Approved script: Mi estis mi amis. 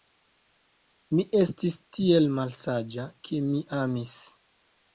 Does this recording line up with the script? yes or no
no